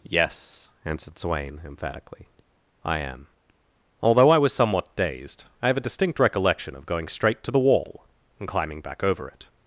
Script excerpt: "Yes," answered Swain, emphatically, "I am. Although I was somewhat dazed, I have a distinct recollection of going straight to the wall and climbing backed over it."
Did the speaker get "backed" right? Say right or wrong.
wrong